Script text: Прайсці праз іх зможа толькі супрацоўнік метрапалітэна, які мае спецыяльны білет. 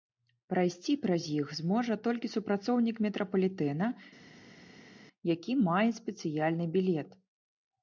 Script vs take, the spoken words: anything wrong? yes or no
no